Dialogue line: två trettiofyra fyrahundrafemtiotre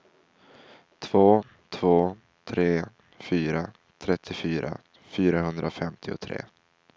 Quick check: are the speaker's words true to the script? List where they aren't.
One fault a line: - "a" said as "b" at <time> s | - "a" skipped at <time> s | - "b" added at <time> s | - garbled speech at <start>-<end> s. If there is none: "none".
- "två tre fyra" added at 1.7 s